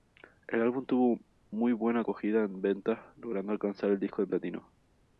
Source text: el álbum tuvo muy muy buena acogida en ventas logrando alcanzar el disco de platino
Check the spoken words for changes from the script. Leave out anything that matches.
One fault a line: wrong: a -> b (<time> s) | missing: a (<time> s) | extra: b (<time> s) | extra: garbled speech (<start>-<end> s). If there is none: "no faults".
missing: muy (1.7 s)